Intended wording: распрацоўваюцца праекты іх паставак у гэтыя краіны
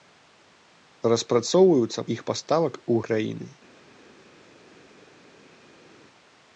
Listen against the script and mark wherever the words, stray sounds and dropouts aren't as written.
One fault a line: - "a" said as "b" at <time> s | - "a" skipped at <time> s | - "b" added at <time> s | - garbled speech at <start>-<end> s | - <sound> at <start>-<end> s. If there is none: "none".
- "праекты" skipped at 2.1 s
- "гэтыя" skipped at 3.0 s